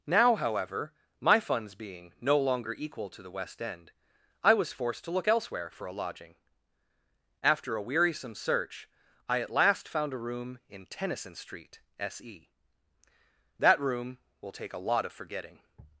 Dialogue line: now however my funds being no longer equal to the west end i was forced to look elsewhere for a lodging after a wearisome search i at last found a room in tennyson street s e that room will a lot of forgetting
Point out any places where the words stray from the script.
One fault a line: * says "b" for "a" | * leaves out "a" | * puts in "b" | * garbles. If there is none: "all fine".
* puts in "take"